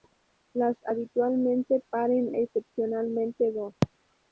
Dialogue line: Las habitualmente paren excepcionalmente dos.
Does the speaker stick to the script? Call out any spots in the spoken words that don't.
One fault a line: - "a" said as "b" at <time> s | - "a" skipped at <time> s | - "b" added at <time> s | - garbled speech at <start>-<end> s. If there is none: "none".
none